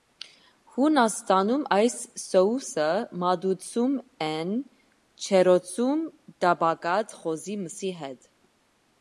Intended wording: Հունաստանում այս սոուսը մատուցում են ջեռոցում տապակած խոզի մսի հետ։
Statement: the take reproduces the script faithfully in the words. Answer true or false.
true